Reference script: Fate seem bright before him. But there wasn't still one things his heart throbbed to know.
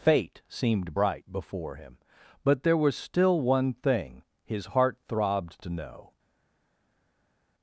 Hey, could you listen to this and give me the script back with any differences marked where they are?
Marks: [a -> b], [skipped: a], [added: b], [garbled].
Fate [seem -> seemed] bright before him. But there [wasn't -> was] still one [things -> thing] his heart throbbed to know.